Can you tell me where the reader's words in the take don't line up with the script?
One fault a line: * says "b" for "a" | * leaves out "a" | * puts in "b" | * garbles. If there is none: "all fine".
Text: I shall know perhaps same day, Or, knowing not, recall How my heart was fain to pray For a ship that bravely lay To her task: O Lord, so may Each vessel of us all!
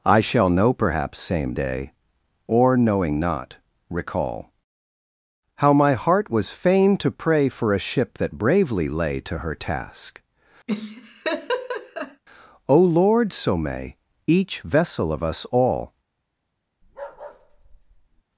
all fine